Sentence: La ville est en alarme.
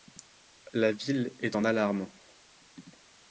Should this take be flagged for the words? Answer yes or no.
no